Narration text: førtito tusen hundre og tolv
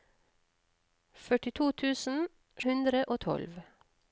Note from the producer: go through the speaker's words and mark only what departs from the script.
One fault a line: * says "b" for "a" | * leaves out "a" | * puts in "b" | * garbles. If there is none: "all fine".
all fine